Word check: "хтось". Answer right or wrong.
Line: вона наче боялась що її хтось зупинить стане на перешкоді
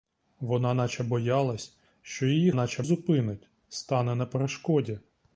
wrong